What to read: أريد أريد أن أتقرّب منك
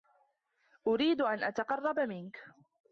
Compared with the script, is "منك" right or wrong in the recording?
right